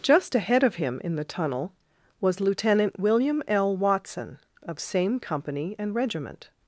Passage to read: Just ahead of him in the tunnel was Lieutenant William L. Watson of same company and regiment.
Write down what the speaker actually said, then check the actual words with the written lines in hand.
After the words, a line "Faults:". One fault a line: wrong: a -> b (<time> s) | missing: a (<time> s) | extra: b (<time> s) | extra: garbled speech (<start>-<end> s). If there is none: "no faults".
Just ahead of him in the tunnel was Lieutenant William L. Watson of same company and regiment.
Faults:
no faults